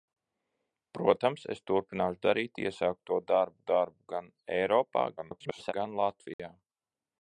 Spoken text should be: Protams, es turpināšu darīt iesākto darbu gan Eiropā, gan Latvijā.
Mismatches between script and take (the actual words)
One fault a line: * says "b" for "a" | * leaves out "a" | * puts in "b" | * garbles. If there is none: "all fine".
* puts in "darbu"
* garbles